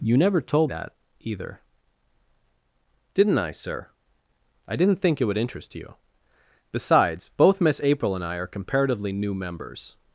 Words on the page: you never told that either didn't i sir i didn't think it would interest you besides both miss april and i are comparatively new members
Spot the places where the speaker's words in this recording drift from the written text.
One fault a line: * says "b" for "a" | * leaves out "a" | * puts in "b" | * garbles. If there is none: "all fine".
all fine